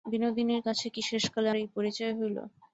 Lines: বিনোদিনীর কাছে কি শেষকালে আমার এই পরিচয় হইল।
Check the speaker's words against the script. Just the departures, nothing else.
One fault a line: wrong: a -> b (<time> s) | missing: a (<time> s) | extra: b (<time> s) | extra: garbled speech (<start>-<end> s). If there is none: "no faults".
missing: আমার (1.5 s)